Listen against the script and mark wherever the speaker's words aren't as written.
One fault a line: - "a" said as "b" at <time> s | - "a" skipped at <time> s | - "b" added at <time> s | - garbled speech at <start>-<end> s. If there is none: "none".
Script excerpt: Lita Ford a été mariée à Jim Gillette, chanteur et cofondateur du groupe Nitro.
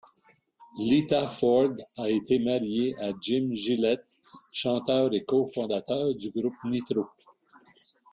none